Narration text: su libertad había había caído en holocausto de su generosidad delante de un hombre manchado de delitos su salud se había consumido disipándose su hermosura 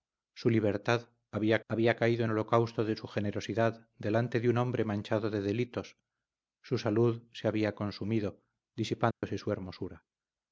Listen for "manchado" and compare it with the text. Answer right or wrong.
right